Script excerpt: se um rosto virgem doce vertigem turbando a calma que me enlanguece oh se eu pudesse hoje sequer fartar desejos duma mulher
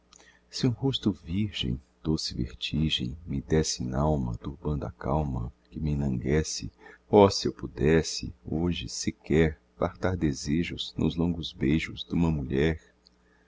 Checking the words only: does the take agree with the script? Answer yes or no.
no